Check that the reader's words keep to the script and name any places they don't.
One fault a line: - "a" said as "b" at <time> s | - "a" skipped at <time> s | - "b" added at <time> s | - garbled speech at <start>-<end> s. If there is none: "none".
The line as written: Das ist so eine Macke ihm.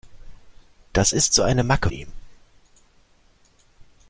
none